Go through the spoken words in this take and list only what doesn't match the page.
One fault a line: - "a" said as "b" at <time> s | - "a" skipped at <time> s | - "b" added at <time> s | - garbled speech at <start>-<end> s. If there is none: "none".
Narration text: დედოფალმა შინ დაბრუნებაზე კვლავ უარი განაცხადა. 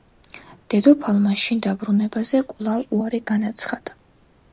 none